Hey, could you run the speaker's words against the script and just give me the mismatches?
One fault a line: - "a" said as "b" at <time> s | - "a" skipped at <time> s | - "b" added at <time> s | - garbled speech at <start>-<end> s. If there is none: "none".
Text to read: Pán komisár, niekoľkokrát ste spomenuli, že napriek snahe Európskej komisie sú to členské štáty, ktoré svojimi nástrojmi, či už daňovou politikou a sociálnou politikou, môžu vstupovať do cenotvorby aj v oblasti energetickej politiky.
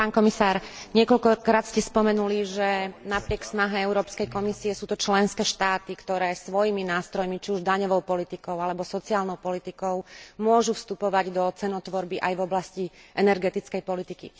- "a" said as "alebo" at 8.6 s